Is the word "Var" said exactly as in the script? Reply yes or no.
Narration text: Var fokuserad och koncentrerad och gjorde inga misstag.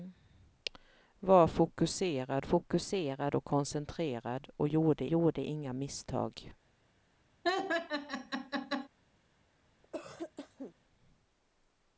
yes